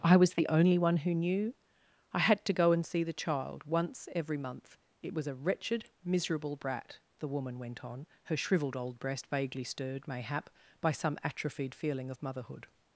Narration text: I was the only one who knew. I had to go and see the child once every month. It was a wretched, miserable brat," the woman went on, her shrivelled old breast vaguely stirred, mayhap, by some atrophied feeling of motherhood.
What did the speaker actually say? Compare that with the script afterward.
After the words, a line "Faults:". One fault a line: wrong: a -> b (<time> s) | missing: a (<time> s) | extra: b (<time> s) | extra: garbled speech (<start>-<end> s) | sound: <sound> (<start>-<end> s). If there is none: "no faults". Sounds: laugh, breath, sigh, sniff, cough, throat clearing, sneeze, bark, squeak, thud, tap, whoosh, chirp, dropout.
I was the only one who knew. I had to go and see the child once every month. It was a wretched, miserable brat," the woman went on, her shrivelled old breast vaguely stirred, mayhap, by some atrophied feeling of motherhood.
Faults:
no faults